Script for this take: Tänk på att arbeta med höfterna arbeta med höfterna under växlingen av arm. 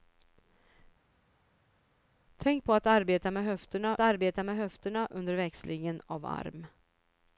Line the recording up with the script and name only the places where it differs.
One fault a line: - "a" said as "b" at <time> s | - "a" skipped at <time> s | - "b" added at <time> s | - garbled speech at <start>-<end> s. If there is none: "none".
none